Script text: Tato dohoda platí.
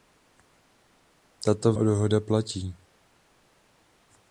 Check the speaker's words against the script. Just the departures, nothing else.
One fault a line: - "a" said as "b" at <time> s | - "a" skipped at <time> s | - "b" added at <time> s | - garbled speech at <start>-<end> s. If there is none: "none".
none